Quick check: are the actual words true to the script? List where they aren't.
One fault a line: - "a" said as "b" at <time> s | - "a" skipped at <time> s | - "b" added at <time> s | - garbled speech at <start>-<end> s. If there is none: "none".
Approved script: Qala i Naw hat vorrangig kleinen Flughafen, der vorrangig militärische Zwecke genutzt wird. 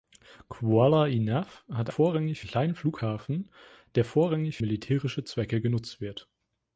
none